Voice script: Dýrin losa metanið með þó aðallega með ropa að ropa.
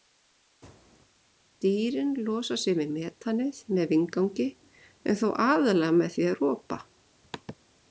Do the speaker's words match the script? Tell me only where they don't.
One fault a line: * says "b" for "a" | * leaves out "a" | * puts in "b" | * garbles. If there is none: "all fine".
* puts in "sig við"
* puts in "vindgangi en"
* says "því" for "ropa"